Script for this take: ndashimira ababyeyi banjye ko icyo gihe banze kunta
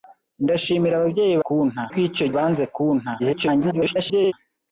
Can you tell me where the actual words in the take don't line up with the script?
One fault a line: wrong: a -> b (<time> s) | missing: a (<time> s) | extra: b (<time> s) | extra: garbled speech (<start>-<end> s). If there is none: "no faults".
wrong: banjye -> kunta (1.4 s)
missing: gihe (2.3 s)
extra: garbled speech (3.2-4.3 s)